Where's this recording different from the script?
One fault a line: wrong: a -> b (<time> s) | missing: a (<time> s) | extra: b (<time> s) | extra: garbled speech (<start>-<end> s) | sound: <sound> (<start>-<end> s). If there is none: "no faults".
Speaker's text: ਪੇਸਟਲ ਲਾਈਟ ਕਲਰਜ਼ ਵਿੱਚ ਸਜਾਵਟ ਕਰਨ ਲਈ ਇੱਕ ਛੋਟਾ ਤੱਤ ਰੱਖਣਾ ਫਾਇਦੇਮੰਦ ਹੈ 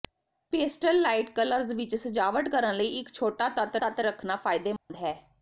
extra: ਤੱਤ (3.8 s)
sound: dropout (4.8-4.9 s)